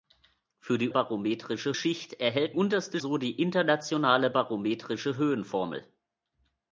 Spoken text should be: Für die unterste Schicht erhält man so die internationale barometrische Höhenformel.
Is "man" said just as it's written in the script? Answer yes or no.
no